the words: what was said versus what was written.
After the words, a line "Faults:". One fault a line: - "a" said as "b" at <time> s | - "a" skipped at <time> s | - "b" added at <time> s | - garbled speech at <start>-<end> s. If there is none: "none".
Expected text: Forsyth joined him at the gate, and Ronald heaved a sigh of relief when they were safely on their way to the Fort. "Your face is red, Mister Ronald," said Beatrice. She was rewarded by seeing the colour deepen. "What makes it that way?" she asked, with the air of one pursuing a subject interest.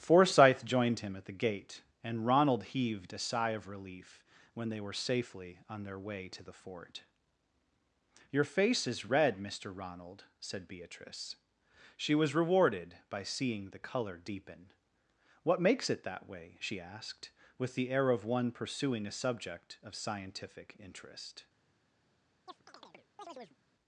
Forsyth joined him at the gate, and Ronald heaved a sigh of relief when they were safely on their way to the Fort. "Your face is red, Mister Ronald," said Beatrice. She was rewarded by seeing the colour deepen. "What makes it that way?" she asked, with the air of one pursuing a subject of scientific interest.
Faults:
- "of scientific" added at 19.8 s